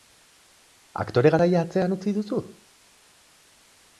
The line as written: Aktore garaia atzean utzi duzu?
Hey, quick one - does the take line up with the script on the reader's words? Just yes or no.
yes